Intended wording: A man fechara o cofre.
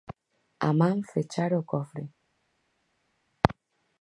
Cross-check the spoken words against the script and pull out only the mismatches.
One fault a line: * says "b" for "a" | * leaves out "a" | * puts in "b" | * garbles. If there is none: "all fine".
all fine